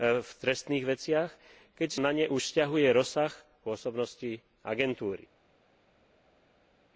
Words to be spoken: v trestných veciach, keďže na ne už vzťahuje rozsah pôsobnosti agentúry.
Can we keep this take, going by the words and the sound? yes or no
yes